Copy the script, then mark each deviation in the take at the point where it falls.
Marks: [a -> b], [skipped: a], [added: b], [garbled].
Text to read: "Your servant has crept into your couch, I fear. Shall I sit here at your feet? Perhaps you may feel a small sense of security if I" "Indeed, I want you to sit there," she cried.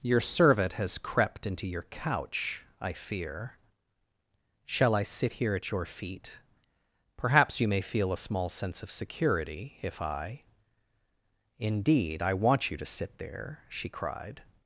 "Your servant has crept into your couch, I fear. Shall I sit here at your feet? Perhaps you may feel a small sense of security if I" "Indeed, I want you to sit there," she cried.